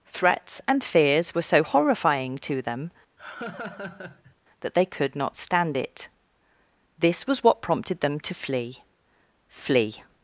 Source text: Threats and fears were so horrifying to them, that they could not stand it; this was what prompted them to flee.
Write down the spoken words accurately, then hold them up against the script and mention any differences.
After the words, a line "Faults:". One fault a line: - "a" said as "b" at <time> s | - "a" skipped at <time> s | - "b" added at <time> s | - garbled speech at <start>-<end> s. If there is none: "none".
Threats and fears were so horrifying to them, that they could not stand it; this was what prompted them to flee flee.
Faults:
- "flee" added at 9.5 s